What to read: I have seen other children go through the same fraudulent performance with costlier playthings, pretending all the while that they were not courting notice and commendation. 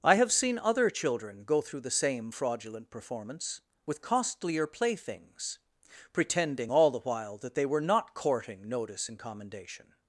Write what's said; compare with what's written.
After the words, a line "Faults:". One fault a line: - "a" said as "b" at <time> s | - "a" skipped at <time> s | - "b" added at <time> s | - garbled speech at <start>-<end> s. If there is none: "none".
I have seen other children go through the same fraudulent performance with costlier playthings, pretending all the while that they were not courting notice and commendation.
Faults:
none